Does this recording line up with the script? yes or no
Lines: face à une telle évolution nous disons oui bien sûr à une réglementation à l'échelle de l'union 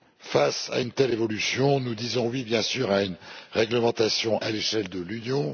yes